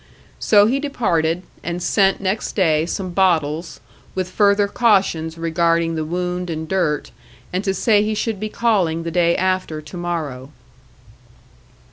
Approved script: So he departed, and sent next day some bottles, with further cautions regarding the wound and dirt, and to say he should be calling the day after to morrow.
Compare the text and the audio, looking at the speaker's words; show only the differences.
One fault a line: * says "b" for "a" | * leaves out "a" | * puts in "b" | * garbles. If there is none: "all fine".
all fine